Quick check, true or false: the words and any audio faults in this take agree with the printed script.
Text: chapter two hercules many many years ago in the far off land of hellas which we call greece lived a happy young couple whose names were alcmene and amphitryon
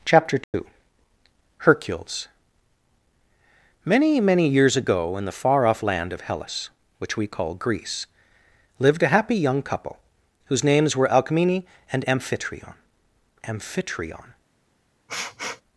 false